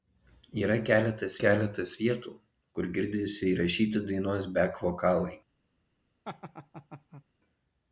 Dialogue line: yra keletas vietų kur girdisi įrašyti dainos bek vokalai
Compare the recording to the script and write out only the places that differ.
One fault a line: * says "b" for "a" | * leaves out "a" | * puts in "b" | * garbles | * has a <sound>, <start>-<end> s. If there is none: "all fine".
* puts in "keletas"
* has a laugh, 6.2-7.2 s